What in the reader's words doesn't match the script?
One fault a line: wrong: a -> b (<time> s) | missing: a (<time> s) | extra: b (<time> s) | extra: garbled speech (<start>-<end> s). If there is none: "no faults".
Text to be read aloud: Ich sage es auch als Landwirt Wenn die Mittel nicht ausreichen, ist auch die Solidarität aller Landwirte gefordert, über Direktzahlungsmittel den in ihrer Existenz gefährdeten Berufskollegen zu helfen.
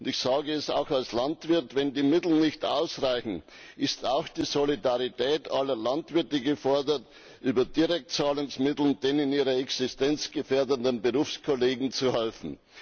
no faults